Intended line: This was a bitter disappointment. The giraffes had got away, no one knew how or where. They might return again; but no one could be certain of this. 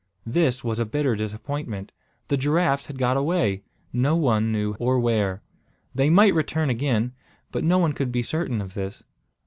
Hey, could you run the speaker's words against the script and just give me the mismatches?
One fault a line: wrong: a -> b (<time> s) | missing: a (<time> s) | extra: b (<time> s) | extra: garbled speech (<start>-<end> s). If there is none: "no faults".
missing: how (4.7 s)